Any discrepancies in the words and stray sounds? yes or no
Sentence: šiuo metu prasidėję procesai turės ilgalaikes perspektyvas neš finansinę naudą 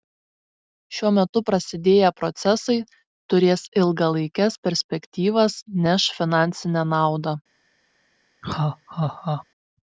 yes